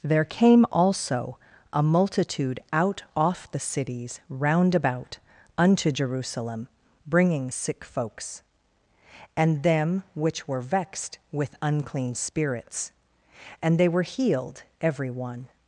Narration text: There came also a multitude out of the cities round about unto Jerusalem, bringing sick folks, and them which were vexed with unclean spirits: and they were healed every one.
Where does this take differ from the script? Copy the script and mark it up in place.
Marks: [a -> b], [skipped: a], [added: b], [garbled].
There came also a multitude out [of -> off] the cities round about unto Jerusalem, bringing sick folks, and them which were vexed with unclean spirits: and they were healed every one.